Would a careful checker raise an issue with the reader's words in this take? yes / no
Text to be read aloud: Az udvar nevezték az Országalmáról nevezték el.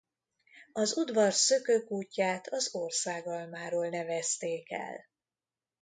yes